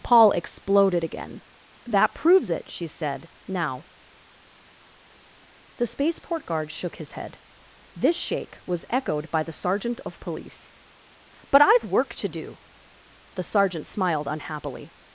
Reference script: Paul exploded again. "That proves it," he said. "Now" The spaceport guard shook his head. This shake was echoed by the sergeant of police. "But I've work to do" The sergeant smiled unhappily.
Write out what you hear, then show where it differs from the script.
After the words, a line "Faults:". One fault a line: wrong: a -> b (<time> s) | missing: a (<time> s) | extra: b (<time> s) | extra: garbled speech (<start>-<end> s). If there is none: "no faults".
Paul exploded again. "That proves it," she said. "Now" The spaceport guard shook his head. This shake was echoed by the sergeant of police. "But I've work to do" The sergeant smiled unhappily.
Faults:
wrong: he -> she (2.7 s)